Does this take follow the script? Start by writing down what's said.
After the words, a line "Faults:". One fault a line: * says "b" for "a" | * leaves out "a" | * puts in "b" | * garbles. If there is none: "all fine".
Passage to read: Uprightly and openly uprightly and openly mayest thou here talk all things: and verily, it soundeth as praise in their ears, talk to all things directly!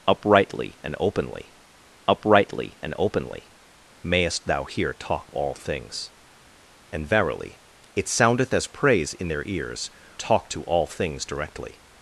Uprightly and openly uprightly and openly mayest thou here talk all things: and verily, it soundeth as praise in their ears, talk to all things directly!
Faults:
all fine